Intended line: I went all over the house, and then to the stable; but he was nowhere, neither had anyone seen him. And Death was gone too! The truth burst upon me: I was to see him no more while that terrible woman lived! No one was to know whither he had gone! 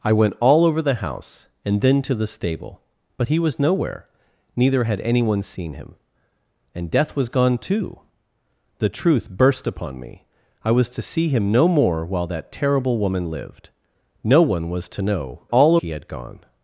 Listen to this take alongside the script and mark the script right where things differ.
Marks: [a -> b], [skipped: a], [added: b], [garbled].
I went all over the house, and then to the stable; but he was nowhere, neither had anyone seen him. And Death was gone too! The truth burst upon me: I was to see him no more while that terrible woman lived! No one was to know [whither -> all] he had gone!